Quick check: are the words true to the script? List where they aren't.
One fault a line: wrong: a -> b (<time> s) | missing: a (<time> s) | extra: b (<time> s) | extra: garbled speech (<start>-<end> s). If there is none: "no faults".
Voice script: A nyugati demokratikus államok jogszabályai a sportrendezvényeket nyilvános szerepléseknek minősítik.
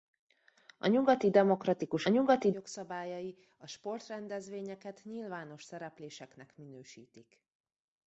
wrong: államok -> nyugati (2.1 s)